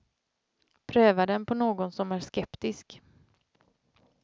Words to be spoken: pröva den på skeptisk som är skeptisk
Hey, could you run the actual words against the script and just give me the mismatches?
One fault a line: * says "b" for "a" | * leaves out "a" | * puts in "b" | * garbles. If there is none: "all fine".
* says "någon" for "skeptisk"